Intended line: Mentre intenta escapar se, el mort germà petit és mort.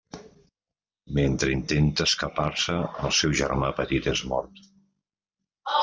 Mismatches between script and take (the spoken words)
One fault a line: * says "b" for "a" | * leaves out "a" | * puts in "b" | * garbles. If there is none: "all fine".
* says "seu" for "mort"